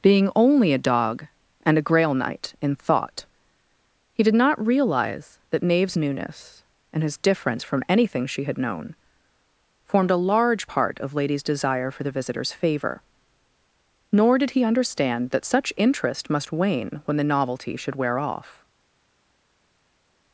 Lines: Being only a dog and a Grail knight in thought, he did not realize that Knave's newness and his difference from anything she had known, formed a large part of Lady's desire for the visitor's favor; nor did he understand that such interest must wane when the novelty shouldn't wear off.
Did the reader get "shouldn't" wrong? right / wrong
wrong